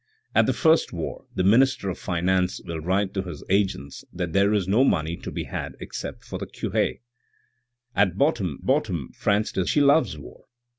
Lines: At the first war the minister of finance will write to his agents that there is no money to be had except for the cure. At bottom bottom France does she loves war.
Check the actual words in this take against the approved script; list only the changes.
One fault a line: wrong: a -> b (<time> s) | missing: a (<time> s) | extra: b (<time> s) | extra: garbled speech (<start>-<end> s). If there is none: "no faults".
no faults